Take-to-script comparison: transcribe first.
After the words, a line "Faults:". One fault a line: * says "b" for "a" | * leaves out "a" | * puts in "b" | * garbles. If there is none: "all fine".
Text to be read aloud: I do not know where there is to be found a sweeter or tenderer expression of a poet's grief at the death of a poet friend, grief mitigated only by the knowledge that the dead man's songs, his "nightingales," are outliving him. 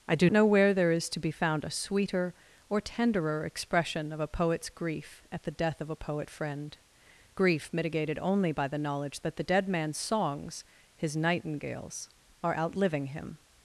I do know where there is to be found a sweeter or tenderer expression of a poet's grief at the death of a poet friend, grief mitigated only by the knowledge that the dead man's songs, his "nightingales," are outliving him.
Faults:
* leaves out "not"